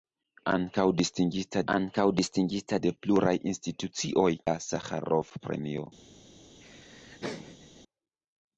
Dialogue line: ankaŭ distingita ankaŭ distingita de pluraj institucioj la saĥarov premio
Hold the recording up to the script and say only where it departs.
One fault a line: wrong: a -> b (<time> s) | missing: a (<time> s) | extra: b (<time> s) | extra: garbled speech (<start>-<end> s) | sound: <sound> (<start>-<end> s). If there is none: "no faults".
sound: laugh (6.6-7.8 s)